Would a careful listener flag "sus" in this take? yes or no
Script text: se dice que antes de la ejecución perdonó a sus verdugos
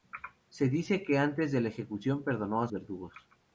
yes